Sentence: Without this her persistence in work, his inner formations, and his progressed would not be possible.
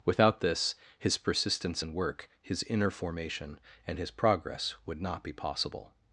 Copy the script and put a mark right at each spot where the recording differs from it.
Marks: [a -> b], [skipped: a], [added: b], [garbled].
Without this [her -> his] persistence in work, his inner [formations, -> formation] and his [progressed -> progress] would not be possible.